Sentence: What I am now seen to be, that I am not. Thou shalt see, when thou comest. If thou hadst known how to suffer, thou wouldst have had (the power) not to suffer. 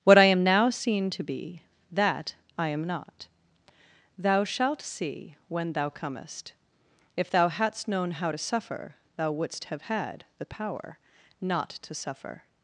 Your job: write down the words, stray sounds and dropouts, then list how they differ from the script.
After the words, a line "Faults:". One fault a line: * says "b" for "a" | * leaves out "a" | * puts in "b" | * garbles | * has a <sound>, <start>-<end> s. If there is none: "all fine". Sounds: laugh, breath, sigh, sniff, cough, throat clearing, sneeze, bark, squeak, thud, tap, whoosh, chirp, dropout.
What I am now seen to be, that I am not. Thou shalt see, when thou comest. If thou hadst known how to suffer, thou wouldst have had (the power) not to suffer.
Faults:
all fine